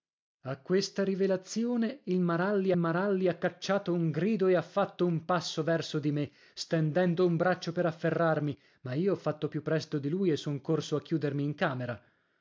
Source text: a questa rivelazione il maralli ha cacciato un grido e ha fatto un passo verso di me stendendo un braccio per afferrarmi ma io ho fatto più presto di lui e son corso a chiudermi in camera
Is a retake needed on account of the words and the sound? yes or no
yes